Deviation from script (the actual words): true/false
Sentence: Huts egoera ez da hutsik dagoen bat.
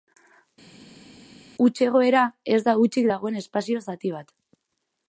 true